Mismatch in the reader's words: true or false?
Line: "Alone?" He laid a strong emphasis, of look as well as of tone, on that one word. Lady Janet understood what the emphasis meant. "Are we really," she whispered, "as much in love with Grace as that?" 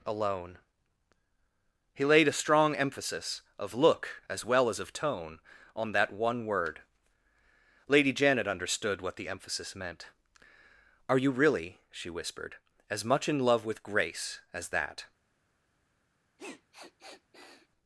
true